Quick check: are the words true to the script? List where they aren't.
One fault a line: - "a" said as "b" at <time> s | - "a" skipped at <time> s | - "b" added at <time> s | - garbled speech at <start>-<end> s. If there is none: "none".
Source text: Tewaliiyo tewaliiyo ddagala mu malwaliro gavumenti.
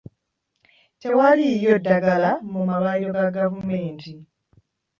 - "tewaliiyo" skipped at 1.7 s
- "ga" added at 3.2 s